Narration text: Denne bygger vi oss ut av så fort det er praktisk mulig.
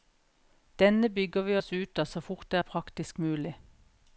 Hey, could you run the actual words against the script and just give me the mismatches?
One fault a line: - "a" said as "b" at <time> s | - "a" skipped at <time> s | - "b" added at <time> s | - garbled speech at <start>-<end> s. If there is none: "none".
none